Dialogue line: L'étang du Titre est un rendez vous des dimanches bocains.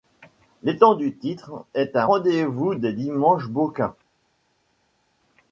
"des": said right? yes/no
yes